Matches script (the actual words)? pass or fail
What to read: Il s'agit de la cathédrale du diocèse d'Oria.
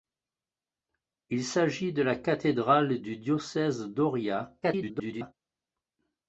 fail